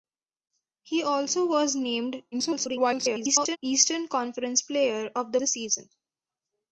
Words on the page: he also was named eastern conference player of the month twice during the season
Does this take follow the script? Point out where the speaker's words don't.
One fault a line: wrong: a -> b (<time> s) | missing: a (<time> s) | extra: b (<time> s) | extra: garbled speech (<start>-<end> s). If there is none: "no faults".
extra: garbled speech (2.3-3.6 s)
missing: month twice during (5.4 s)